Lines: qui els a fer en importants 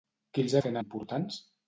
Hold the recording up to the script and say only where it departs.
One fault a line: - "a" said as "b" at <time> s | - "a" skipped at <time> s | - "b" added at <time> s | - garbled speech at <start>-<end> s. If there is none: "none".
none